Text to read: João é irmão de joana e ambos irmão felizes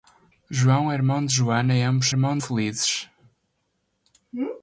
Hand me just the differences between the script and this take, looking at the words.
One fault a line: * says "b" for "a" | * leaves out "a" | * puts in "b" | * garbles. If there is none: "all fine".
all fine